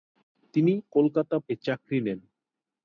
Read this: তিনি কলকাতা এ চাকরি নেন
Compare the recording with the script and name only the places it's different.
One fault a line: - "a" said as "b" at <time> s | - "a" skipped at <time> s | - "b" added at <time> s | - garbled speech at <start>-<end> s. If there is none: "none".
none